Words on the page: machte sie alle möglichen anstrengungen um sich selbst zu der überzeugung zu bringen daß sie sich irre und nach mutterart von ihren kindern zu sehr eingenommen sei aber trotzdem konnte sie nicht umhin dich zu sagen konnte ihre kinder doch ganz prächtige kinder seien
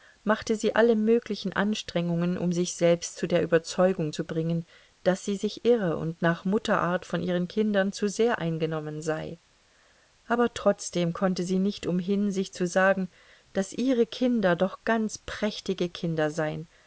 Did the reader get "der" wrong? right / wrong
right